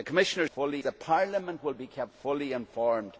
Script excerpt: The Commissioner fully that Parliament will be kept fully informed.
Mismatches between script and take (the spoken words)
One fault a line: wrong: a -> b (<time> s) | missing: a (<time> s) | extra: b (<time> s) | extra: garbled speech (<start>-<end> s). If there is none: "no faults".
no faults